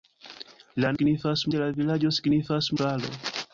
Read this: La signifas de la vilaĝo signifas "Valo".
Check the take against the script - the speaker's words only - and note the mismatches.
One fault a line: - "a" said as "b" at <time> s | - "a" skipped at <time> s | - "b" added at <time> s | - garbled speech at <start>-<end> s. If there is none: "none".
none